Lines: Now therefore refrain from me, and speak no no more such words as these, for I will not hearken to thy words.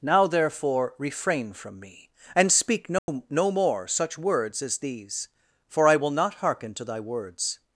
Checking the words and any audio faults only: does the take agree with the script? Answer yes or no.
no